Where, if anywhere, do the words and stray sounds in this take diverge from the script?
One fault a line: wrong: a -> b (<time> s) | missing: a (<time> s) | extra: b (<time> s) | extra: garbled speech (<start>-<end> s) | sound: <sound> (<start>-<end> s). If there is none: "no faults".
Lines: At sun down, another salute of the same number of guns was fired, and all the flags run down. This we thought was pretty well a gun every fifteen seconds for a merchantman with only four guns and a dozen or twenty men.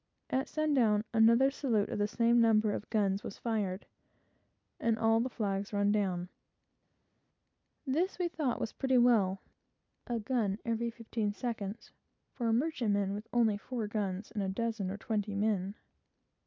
no faults